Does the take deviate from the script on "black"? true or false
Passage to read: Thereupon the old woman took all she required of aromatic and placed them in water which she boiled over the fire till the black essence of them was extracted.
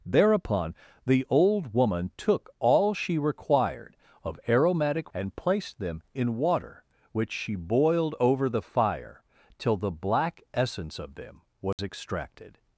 false